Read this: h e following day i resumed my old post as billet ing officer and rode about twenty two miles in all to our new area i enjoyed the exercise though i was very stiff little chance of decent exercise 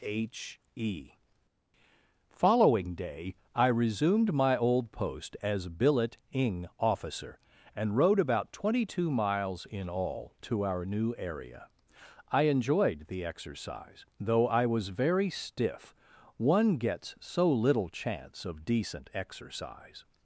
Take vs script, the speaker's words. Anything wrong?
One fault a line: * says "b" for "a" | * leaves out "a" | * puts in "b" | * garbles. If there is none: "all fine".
* puts in "one gets so"